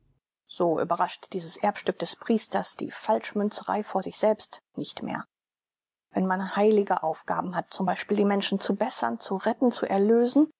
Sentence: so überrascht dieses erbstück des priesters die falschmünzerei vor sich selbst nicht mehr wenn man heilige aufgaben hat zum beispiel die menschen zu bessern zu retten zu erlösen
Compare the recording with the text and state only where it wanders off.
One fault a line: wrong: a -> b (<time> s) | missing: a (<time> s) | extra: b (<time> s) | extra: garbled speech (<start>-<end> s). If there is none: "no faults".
no faults